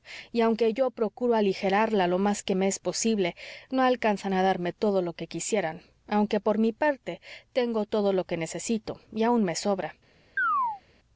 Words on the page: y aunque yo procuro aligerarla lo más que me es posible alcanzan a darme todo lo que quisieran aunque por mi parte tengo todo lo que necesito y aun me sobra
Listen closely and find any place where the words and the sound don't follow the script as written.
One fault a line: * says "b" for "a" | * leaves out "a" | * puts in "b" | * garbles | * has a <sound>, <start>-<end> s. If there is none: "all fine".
* puts in "no"
* has a chirp, 10.4-10.8 s